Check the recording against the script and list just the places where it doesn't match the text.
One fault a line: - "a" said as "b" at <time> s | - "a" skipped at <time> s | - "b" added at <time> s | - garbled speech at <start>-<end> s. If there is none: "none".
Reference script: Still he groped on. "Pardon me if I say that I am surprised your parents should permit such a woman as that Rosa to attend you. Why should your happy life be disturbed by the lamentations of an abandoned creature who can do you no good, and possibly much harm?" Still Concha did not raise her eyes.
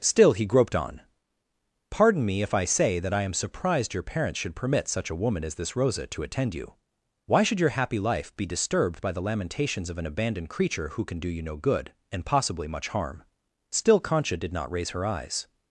- "that" said as "this" at 5.5 s